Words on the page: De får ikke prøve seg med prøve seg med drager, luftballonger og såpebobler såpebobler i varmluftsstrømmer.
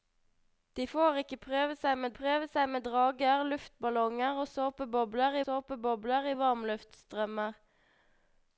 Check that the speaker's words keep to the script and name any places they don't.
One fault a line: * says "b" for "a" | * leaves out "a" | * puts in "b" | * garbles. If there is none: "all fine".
all fine